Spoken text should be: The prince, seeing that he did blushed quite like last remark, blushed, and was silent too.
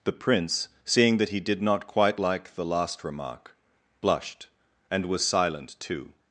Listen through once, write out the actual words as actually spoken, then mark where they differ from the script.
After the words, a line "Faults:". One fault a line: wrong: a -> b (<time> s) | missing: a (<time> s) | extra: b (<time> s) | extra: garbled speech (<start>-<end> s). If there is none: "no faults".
The prince, seeing that he did not quite like the last remark, blushed, and was silent too.
Faults:
wrong: blushed -> not (1.6 s)
extra: the (2.5 s)